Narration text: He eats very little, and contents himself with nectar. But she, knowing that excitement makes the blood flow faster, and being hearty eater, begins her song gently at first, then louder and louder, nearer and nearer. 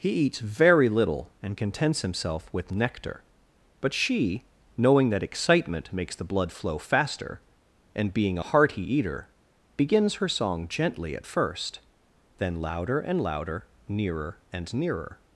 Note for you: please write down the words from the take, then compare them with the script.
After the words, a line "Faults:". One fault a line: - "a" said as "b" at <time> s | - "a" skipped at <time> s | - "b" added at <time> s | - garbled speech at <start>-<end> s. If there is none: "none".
He eats very little, and contents himself with nectar. But she, knowing that excitement makes the blood flow faster, and being hearty eater, begins her song gently at first, then louder and louder, nearer and nearer.
Faults:
none